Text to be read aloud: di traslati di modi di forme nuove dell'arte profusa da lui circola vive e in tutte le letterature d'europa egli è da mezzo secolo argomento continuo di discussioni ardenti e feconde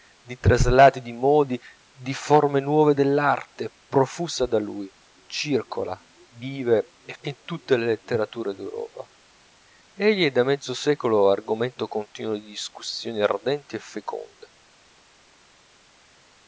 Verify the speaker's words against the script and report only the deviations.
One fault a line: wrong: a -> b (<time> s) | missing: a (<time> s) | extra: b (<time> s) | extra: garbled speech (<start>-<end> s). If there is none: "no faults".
no faults